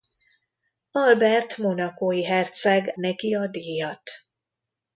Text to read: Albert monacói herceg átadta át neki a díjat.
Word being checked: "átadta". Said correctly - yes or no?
no